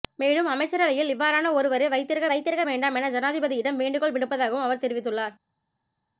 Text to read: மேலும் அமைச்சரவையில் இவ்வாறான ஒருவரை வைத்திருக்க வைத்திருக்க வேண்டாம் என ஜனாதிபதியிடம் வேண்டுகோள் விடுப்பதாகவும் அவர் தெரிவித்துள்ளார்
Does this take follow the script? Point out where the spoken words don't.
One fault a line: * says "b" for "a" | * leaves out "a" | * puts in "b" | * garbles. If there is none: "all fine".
all fine